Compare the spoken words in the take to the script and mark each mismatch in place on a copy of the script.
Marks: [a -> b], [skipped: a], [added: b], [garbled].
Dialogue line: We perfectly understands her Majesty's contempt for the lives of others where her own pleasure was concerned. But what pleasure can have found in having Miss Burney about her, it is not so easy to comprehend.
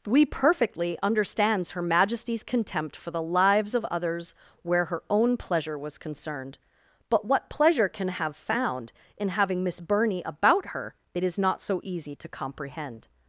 We perfectly understands her Majesty's contempt for the lives of others where her own pleasure was concerned. But what pleasure can have found in having Miss Burney about her, it is not so easy to comprehend.